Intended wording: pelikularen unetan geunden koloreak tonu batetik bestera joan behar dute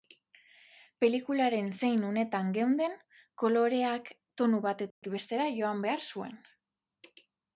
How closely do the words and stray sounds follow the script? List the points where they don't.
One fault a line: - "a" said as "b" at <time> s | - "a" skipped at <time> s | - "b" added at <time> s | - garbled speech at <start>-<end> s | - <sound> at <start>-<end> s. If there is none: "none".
- "zein" added at 1.8 s
- dropout at 4.9-5.0 s
- "dute" said as "zuen" at 6.1 s